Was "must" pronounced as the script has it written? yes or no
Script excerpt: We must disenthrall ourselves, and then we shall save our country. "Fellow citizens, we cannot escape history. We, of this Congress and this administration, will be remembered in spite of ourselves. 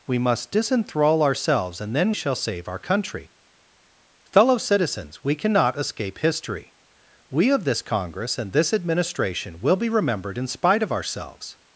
yes